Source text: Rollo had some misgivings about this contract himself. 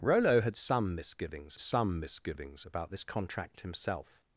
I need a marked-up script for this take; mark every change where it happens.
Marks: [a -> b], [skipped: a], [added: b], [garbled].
Rollo had some misgivings [added: some misgivings] about this contract himself.